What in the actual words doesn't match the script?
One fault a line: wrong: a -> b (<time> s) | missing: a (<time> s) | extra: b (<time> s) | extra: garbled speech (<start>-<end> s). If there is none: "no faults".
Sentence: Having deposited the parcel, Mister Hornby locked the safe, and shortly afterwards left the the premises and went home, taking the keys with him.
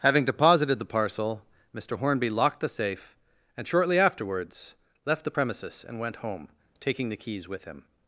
missing: the (5.4 s)